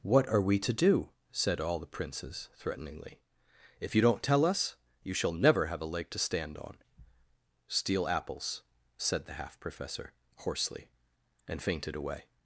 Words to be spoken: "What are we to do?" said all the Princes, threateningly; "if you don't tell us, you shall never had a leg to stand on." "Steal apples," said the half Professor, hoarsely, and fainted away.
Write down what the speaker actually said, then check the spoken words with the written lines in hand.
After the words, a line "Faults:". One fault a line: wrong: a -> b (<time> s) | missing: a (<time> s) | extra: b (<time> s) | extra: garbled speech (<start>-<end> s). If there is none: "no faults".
"What are we to do?" said all the Princes, threateningly; "if you don't tell us, you shall never have a leg to stand on." "Steal apples," said the half Professor, hoarsely, and fainted away.
Faults:
wrong: had -> have (5.7 s)